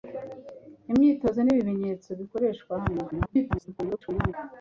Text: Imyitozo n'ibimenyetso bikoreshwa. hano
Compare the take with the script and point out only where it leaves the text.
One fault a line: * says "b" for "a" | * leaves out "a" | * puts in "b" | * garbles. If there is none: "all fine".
* garbles